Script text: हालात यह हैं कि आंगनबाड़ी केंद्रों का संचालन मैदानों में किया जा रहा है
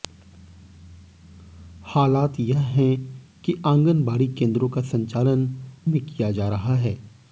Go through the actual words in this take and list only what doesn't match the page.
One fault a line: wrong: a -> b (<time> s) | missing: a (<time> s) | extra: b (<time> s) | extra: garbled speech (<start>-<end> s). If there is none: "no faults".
missing: मैदानों (5.5 s)